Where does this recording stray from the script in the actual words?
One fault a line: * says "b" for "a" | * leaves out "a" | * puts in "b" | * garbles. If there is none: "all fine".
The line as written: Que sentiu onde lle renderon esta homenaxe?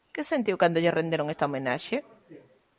* says "cando" for "onde"